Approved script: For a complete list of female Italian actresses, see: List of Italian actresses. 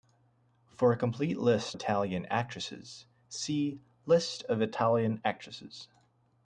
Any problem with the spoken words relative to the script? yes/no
yes